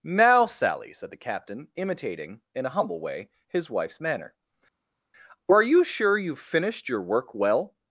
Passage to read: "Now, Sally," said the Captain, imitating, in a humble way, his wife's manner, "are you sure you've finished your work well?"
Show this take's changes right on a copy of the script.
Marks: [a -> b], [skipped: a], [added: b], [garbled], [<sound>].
"Now, Sally," said the Captain, imitating, in a humble way, his wife's manner, "are you sure you've finished your work well?"